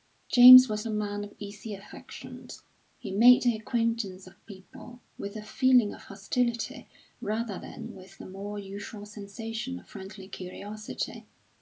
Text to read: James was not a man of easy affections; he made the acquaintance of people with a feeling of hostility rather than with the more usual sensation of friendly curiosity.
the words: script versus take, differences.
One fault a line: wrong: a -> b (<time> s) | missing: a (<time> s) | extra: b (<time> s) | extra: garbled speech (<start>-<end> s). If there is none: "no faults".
missing: not (0.9 s)